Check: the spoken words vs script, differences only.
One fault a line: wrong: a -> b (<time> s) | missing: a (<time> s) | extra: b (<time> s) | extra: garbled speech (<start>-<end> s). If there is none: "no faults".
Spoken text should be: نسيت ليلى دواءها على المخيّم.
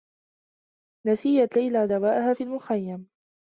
wrong: على -> في (2.3 s)